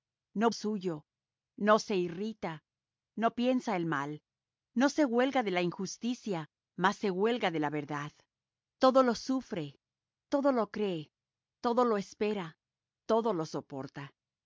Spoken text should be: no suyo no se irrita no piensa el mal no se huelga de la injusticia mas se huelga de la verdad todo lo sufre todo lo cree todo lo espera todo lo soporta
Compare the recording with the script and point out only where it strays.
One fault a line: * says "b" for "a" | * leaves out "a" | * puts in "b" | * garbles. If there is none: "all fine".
all fine